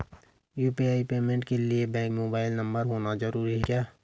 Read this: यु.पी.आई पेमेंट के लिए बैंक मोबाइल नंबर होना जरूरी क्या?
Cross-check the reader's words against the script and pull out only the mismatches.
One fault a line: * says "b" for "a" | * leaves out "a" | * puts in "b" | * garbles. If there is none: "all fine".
all fine